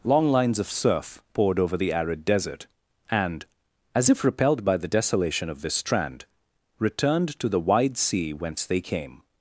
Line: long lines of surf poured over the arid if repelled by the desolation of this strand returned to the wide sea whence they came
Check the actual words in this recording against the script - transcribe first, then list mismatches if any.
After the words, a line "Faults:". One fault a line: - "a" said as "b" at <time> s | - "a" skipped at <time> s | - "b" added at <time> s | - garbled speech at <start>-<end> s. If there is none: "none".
long lines of surf poured over the arid desert and as if repelled by the desolation of this strand returned to the wide sea whence they came
Faults:
- "desert and as" added at 2.2 s